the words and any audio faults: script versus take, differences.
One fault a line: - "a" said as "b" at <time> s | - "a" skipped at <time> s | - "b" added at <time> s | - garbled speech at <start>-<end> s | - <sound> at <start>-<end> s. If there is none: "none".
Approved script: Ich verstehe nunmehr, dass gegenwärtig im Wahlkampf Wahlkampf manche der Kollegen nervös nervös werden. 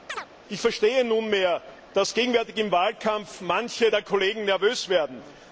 - chirp at 0.1-0.3 s
- "Wahlkampf" skipped at 3.4 s
- "nervös" skipped at 4.9 s